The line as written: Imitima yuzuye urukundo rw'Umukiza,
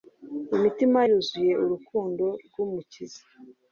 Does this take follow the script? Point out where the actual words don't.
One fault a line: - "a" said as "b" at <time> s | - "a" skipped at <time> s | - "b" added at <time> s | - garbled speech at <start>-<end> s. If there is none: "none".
none